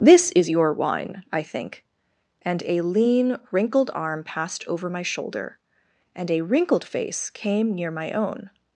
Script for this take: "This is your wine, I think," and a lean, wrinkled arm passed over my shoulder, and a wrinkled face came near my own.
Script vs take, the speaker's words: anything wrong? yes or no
no